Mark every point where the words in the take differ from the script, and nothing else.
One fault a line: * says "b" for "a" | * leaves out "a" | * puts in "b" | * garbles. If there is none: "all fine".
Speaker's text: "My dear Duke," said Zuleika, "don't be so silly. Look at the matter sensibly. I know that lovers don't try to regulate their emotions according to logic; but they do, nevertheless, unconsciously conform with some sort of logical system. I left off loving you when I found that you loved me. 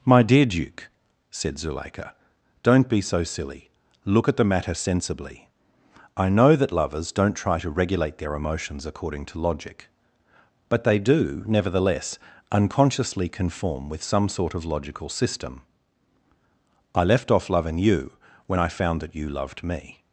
all fine